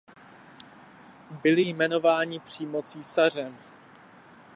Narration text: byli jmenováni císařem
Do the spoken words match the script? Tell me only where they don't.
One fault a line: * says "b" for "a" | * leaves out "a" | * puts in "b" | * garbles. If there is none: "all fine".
* puts in "přímo"